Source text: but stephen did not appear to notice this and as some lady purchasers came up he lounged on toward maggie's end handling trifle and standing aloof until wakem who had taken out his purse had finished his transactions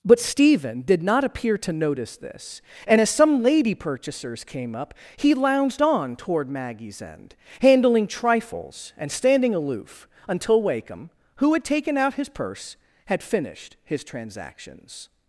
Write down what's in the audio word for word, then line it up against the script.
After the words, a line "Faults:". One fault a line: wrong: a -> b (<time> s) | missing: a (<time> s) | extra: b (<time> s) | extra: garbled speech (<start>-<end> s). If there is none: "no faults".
but stephen did not appear to notice this and as some lady purchasers came up he lounged on toward maggie's end handling trifles and standing aloof until wakem who had taken out his purse had finished his transactions
Faults:
wrong: trifle -> trifles (8.1 s)